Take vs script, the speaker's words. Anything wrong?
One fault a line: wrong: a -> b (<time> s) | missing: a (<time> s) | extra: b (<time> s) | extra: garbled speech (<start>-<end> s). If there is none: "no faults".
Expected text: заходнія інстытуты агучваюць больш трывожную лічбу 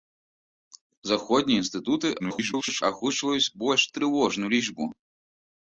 extra: garbled speech (2.2-2.8 s)